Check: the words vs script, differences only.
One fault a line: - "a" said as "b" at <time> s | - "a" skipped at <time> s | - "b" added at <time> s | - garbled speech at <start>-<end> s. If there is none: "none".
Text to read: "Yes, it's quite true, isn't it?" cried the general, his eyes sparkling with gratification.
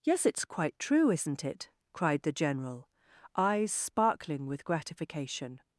- "his" skipped at 2.9 s